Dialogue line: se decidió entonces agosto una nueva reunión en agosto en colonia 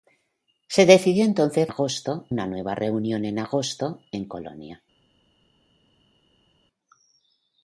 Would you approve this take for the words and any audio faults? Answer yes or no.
yes